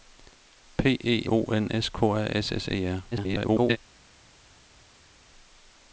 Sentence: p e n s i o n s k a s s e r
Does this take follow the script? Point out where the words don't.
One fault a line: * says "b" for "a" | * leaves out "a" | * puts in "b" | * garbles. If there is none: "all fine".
* leaves out "n s i"
* garbles